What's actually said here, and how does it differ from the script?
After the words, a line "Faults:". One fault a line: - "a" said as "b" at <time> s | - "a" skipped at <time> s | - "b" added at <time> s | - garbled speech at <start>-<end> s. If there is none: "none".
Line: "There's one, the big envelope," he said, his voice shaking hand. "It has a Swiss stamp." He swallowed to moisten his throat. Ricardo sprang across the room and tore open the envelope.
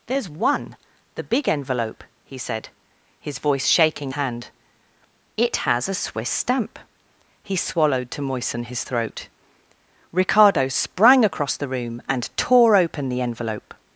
"There's one, the big envelope," he said, his voice shaking hand. "It has a Swiss stamp." He swallowed to moisten his throat. Ricardo sprang across the room and tore open the envelope.
Faults:
none